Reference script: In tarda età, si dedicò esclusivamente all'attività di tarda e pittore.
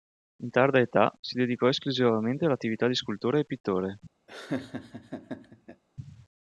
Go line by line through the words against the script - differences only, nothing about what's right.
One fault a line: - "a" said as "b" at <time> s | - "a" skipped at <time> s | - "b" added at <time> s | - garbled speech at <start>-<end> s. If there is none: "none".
- "tarda" said as "scultore" at 3.0 s